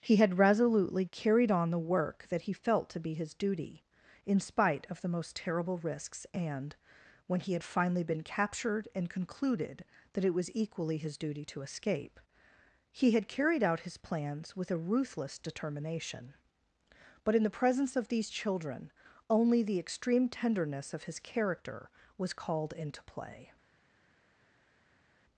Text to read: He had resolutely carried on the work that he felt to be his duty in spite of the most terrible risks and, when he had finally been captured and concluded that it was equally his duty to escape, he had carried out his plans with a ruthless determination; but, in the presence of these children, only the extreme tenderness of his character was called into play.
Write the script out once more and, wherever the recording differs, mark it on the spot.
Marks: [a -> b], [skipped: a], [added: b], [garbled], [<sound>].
He had resolutely carried on the work that he felt to be his duty in spite of the most terrible risks and, when he had finally been captured and concluded that it was equally his duty to escape, he had carried out his plans with a ruthless determination; but, in the presence of these children, only the extreme tenderness of his character was called into play.